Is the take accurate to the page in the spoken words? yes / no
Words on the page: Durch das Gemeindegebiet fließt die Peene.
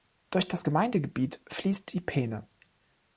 yes